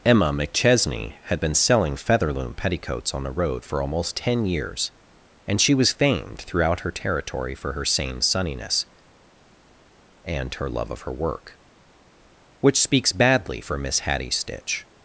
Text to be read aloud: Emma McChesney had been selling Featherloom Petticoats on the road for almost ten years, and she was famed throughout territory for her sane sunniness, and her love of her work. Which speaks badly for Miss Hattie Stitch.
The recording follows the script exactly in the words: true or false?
false